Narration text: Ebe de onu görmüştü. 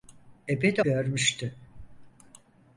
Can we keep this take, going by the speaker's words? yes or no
no